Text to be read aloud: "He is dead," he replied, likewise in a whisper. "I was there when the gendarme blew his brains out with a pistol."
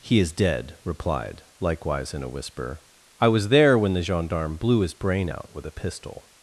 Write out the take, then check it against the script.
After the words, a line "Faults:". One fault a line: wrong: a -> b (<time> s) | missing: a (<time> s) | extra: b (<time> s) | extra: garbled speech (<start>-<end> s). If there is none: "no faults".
"He is dead," replied, likewise in a whisper. "I was there when the gendarme blew his brain out with a pistol."
Faults:
missing: he (0.8 s)
wrong: brains -> brain (5.0 s)